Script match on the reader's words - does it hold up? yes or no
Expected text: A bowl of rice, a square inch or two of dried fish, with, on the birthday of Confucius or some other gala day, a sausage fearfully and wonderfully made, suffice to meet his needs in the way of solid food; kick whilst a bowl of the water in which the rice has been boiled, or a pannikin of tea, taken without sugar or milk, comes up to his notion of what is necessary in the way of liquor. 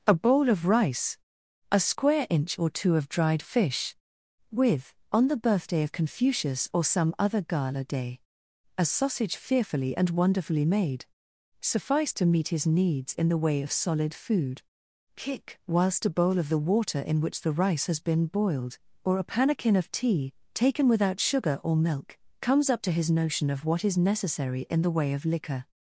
yes